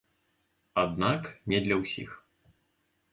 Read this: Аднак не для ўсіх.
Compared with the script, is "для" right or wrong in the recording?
right